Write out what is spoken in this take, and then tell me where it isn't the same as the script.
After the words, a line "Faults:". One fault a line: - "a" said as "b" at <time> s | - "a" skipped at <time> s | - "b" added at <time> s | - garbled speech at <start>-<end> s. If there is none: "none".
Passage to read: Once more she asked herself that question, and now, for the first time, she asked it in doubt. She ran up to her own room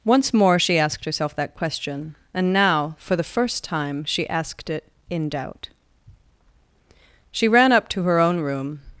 Once more she asked herself that question, and now, for the first time, she asked it in doubt. She ran up to her own room
Faults:
none